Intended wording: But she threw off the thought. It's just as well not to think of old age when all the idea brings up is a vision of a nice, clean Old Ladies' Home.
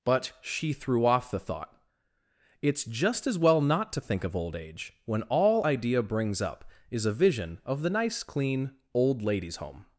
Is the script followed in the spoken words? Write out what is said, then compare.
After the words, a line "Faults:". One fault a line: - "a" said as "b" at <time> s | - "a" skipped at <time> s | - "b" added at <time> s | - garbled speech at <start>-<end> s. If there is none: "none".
But she threw off the thought. It's just as well not to think of old age when all idea brings up is a vision of the nice, clean Old Ladies' Home.
Faults:
- "the" skipped at 5.7 s
- "a" said as "the" at 7.8 s